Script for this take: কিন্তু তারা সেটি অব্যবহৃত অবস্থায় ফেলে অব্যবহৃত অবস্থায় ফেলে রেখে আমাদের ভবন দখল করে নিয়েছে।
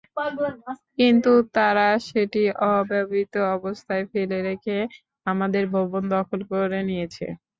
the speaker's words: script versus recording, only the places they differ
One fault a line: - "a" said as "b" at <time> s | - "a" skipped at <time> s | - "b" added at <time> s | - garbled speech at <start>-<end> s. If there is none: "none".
- "অব্যবহৃত অবস্থায় ফেলে" skipped at 4.4 s